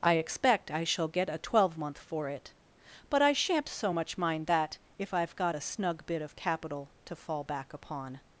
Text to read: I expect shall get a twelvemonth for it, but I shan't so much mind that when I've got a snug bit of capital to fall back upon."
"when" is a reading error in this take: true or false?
true